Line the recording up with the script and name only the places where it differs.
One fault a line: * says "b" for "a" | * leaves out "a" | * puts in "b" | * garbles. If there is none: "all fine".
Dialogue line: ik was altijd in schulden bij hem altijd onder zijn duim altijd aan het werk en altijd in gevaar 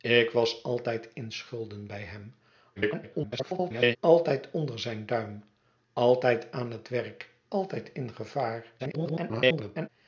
* garbles
* leaves out "en"
* garbles